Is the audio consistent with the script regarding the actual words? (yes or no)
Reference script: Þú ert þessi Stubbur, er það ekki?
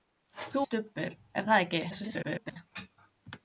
no